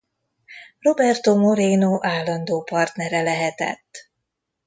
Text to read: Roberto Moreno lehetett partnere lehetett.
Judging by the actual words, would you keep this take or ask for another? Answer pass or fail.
fail